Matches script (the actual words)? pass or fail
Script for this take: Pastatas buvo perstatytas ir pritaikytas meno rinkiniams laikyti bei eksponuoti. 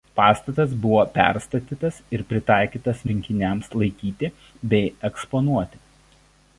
fail